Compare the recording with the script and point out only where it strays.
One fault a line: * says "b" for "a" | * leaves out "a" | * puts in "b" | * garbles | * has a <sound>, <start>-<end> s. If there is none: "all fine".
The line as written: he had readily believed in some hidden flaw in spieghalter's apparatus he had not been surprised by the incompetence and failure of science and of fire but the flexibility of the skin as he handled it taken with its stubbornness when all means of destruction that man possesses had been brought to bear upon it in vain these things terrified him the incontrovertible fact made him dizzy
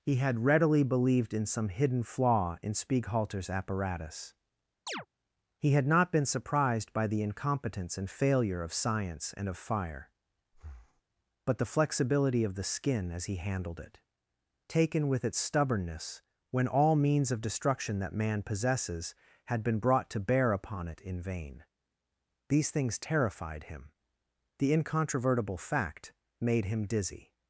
* has a chirp, 4.9-5.1 s
* has a breath, 10.5-11.0 s